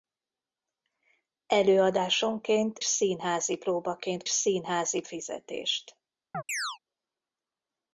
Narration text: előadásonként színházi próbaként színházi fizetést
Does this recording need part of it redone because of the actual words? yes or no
no